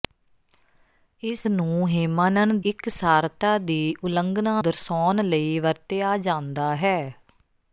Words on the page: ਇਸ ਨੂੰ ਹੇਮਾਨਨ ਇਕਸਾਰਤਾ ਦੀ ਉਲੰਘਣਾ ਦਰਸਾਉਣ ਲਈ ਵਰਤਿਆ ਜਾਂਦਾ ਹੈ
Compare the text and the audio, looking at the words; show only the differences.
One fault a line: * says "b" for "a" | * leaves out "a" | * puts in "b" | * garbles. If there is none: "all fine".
all fine